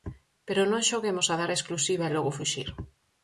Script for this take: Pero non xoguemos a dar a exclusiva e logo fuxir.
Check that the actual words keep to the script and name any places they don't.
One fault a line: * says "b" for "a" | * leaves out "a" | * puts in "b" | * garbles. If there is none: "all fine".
all fine